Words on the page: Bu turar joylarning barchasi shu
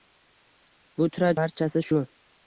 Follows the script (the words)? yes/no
no